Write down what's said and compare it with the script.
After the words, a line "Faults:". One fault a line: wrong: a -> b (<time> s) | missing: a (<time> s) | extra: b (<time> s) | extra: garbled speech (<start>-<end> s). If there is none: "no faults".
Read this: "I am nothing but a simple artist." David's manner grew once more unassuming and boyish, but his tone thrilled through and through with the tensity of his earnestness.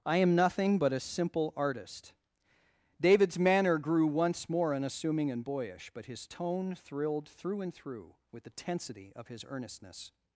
"I am nothing but a simple artist." David's manner grew once more unassuming and boyish, but his tone thrilled through and through with the tensity of his earnestness.
Faults:
no faults